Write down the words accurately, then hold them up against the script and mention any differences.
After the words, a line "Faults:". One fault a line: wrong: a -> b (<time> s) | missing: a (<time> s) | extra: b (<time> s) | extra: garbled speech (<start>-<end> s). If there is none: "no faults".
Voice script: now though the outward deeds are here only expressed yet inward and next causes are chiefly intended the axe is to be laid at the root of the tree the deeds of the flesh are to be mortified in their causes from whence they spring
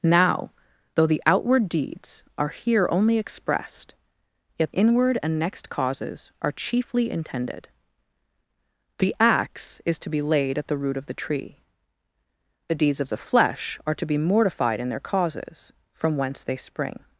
now though the outward deeds are here only expressed yet inward and next causes are chiefly intended the axe is to be laid at the root of the tree the deeds of the flesh are to be mortified in their causes from whence they spring
Faults:
no faults